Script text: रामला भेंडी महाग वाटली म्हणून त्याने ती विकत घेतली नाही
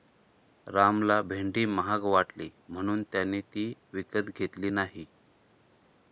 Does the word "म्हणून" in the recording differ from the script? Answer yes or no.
no